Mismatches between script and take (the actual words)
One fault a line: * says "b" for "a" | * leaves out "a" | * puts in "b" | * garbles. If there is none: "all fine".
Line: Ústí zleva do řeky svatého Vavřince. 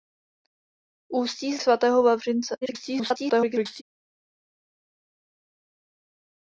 * leaves out "zleva do řeky"
* garbles